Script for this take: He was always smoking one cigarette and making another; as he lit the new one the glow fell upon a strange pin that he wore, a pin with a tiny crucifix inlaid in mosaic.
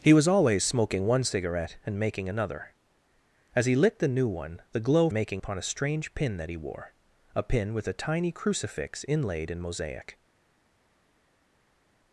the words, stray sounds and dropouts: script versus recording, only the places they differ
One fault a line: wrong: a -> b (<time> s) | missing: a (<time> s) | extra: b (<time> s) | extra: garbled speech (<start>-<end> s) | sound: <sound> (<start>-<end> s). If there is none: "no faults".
wrong: fell -> making (5.1 s)